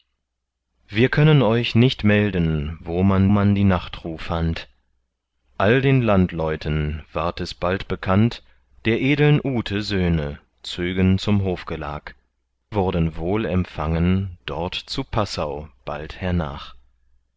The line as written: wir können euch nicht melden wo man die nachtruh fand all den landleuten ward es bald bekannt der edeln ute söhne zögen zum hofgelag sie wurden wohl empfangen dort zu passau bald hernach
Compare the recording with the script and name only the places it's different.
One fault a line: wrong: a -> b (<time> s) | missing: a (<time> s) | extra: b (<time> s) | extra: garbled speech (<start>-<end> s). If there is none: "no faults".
extra: man (3.3 s)
missing: sie (12.1 s)